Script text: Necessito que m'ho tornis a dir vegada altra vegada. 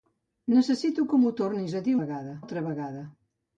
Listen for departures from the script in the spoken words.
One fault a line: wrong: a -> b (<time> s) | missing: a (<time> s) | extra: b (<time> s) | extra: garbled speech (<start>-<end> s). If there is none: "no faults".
no faults